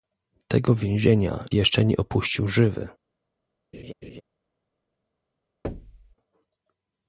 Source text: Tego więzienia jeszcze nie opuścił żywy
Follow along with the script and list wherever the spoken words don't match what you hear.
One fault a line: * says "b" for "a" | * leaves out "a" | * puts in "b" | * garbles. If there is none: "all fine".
all fine